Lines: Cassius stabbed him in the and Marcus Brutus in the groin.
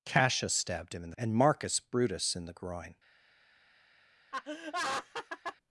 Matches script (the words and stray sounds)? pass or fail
fail